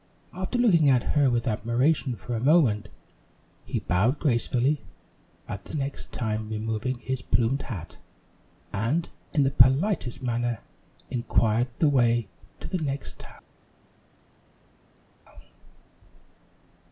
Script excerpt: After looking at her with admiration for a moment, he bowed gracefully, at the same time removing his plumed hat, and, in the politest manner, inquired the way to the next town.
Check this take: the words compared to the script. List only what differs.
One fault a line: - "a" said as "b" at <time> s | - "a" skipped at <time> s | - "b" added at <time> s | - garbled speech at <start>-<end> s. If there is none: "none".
- "same" said as "next" at 5.7 s